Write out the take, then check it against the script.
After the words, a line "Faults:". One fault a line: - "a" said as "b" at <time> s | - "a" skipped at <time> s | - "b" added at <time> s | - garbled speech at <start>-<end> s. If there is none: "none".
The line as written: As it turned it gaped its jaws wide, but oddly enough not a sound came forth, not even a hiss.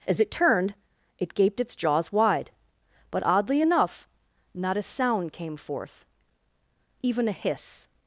As it turned it gaped its jaws wide, but oddly enough not a sound came forth, even a hiss.
Faults:
- "not" skipped at 6.0 s